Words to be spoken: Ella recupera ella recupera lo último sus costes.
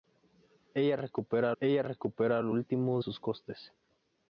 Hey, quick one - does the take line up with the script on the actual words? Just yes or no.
yes